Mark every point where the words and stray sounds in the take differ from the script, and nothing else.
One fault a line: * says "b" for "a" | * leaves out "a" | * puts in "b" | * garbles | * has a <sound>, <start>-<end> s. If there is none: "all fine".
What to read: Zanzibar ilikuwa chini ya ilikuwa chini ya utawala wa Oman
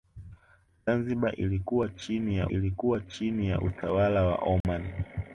* has a dropout, 4.6-4.6 s